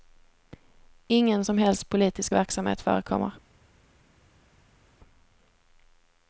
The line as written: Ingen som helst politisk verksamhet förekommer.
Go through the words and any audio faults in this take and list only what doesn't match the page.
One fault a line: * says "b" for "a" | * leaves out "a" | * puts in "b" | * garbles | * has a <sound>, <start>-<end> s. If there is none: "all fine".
all fine